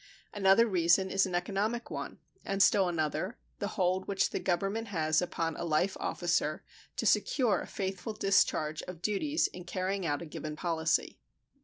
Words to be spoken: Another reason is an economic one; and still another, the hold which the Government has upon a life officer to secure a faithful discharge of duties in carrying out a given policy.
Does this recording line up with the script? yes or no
yes